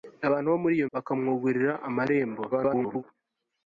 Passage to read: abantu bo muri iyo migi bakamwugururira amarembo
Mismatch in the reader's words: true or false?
true